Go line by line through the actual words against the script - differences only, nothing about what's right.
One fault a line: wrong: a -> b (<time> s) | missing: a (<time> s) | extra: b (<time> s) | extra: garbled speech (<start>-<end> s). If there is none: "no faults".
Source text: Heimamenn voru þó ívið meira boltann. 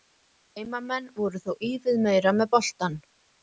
extra: með (2.4 s)